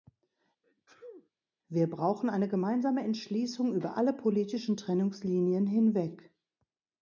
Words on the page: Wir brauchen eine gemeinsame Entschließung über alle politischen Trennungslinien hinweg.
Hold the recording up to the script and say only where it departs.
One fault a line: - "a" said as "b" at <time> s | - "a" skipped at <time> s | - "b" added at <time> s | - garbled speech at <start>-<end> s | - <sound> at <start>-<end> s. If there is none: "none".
- sneeze at 0.6-1.3 s